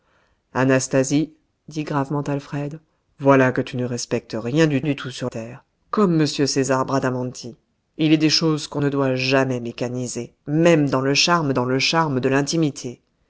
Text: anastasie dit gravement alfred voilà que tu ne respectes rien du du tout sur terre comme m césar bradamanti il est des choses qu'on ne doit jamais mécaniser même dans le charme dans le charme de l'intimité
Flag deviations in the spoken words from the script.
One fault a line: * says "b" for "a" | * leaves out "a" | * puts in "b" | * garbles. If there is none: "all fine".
all fine